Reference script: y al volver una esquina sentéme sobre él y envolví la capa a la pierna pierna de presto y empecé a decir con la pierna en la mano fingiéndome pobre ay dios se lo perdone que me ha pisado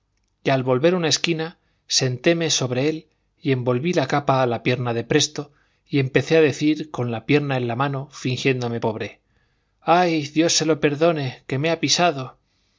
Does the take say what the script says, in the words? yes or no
no